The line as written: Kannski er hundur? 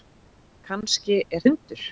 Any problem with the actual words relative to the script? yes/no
no